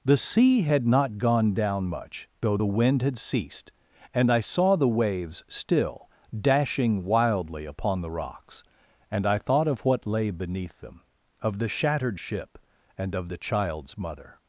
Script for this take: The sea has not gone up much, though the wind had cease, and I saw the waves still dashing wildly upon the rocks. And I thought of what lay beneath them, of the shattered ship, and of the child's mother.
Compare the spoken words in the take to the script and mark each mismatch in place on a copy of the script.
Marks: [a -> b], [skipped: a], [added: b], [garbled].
The sea [has -> had] not gone [up -> down] much, though the wind had [cease, -> ceased] and I saw the waves still dashing wildly upon the rocks. And I thought of what lay beneath them, of the shattered ship, and of the child's mother.